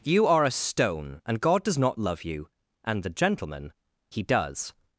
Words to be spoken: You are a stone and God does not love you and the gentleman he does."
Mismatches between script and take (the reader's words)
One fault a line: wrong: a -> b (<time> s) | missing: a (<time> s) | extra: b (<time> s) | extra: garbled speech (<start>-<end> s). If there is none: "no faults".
no faults